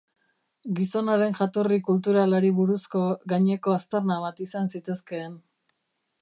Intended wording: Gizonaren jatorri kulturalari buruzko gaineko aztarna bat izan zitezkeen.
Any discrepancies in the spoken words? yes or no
no